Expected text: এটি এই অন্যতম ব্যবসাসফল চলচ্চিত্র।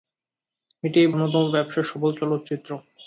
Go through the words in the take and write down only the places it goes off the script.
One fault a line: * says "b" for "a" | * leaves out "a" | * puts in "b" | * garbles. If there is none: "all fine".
all fine